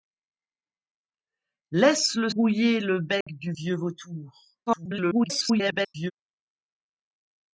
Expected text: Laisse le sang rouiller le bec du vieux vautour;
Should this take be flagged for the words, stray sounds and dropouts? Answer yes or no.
yes